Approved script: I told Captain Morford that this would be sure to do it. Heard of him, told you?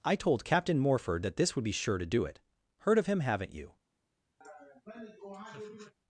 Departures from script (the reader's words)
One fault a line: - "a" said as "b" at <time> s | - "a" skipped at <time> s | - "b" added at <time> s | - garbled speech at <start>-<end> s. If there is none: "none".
- "told" said as "haven't" at 3.2 s